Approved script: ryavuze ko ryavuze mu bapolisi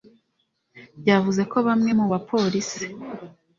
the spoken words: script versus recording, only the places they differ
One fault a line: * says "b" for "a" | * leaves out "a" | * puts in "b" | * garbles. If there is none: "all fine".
* says "bamwe" for "ryavuze"